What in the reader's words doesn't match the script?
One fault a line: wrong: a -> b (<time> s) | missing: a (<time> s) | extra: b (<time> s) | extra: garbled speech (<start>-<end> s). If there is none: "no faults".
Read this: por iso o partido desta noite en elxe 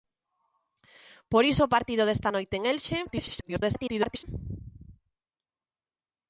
extra: garbled speech (3.1-4.2 s)